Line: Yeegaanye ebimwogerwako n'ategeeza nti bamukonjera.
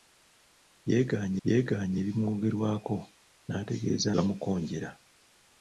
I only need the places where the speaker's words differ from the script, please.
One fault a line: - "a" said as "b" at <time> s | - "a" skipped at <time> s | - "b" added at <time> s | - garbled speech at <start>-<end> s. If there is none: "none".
- "yeegaanye" added at 1.5 s
- "nti" skipped at 4.1 s